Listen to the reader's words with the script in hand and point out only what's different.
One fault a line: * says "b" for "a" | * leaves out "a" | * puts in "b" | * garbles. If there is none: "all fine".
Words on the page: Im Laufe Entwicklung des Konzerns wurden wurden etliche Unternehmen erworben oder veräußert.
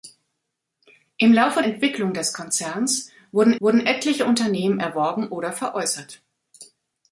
all fine